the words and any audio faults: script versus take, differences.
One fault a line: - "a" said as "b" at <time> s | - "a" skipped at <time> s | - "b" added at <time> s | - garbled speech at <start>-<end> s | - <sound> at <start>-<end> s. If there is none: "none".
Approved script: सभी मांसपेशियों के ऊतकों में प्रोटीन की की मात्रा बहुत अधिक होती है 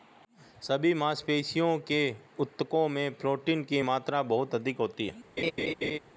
- "की" skipped at 3.8 s
- laugh at 5.4-6.0 s